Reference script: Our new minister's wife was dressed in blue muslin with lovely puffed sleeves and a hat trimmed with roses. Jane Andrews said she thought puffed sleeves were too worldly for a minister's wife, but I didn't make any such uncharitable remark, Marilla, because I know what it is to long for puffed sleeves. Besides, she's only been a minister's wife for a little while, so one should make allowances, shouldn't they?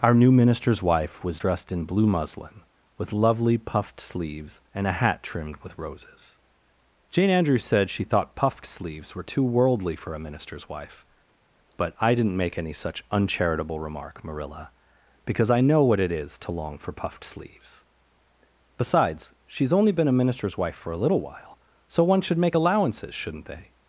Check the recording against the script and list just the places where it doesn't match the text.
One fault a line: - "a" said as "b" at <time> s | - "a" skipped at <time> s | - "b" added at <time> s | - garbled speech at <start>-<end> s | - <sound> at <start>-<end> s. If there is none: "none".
none